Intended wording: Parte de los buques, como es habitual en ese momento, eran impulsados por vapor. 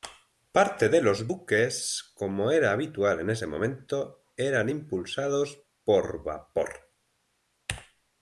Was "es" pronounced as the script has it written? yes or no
no